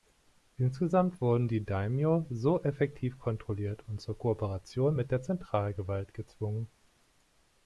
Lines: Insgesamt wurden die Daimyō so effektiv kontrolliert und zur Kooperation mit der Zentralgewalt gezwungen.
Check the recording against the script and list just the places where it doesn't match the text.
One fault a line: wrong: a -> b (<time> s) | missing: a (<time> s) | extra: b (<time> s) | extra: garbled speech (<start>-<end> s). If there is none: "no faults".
no faults